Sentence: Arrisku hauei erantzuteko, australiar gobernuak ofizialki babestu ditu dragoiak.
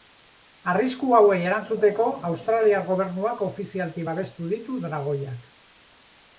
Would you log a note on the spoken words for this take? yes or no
no